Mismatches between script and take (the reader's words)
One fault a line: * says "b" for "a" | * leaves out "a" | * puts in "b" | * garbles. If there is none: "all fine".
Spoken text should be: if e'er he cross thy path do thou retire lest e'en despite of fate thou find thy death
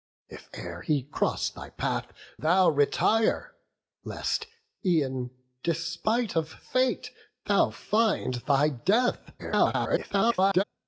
* leaves out "do"
* garbles